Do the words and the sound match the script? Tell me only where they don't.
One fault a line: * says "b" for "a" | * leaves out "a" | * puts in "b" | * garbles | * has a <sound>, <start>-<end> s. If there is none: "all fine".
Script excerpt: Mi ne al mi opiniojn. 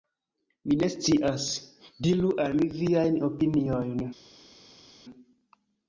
* puts in "scias Diru"
* puts in "viajn"